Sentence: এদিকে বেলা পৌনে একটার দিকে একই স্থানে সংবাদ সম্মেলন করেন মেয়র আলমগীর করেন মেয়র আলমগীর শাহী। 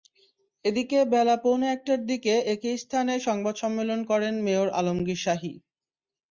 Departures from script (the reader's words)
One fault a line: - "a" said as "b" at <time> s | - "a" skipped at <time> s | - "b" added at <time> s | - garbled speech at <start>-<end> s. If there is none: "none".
- "করেন মেয়র আলমগীর" skipped at 5.2 s